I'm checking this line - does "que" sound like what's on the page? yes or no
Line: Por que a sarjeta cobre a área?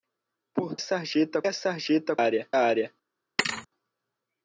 no